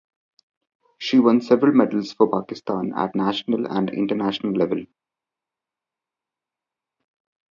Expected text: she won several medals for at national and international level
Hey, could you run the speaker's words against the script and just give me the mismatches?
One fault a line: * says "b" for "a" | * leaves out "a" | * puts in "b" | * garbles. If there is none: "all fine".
* puts in "pakistan"